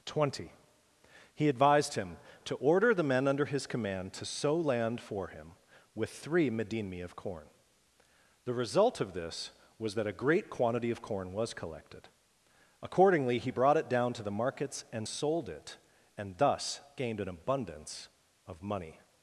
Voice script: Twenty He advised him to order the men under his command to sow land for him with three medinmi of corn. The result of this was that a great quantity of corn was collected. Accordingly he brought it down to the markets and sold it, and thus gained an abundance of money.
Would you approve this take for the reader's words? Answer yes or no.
yes